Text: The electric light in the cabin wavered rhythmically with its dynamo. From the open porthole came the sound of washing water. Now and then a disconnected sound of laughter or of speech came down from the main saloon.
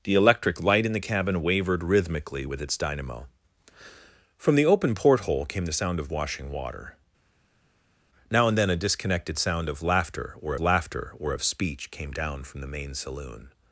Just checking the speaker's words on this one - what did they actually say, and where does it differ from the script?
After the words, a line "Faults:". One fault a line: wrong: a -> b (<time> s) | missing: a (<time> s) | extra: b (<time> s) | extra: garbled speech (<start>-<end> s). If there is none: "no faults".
The electric light in the cabin wavered rhythmically with its dynamo. From the open porthole came the sound of washing water. Now and then a disconnected sound of laughter or laughter or of speech came down from the main saloon.
Faults:
extra: laughter or (10.6 s)